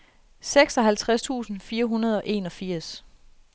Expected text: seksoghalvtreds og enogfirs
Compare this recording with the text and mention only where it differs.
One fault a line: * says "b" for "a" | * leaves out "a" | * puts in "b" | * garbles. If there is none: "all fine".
* puts in "tusind fire hundrede"